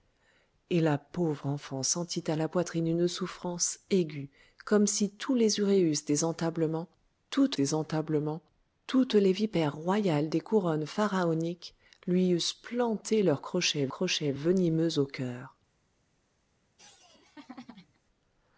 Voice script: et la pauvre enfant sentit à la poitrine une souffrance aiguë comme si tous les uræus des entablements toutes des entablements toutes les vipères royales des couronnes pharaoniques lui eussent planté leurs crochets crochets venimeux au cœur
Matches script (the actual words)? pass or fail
pass